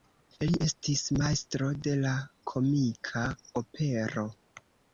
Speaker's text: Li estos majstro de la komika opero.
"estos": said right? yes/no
no